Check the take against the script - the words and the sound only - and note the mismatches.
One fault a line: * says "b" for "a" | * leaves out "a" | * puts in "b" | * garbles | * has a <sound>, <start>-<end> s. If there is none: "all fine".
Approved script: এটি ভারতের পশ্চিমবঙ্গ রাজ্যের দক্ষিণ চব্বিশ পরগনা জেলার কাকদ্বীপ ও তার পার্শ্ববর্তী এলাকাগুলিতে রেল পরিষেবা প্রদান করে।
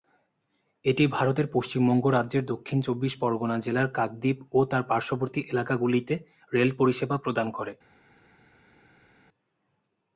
all fine